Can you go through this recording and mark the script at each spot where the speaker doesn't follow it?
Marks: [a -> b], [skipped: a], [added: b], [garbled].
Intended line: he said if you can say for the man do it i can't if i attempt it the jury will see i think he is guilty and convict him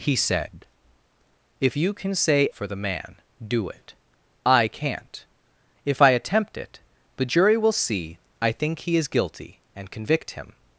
he said if you can say for the man do it i can't if i attempt it the jury will see i think he is guilty and convict him